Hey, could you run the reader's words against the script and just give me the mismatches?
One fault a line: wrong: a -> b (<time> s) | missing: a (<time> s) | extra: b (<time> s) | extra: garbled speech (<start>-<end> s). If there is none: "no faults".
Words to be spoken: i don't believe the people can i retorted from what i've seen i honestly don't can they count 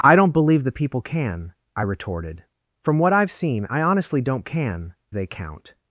no faults